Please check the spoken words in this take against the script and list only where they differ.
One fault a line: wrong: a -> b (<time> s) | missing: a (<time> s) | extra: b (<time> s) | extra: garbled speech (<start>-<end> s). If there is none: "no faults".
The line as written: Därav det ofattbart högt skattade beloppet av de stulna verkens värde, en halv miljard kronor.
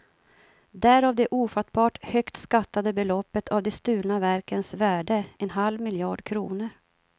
no faults